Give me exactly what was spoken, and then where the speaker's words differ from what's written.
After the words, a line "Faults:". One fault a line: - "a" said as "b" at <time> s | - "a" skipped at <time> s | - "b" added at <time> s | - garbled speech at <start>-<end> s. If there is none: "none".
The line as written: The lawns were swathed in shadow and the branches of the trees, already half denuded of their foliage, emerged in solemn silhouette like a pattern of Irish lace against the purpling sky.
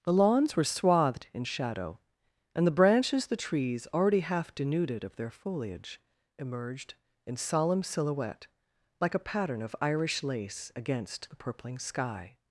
The lawns were swathed in shadow and the branches the trees, already half denuded of their foliage, emerged in solemn silhouette like a pattern of Irish lace against the purpling sky.
Faults:
- "of" skipped at 3.3 s